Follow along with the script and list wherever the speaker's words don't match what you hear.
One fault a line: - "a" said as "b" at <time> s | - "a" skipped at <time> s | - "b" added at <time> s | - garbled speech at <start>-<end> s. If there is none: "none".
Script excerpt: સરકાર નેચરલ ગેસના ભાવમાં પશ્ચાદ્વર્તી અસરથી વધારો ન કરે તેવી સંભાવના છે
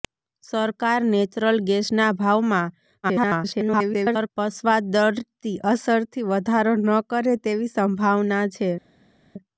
- garbled speech at 3.0-4.3 s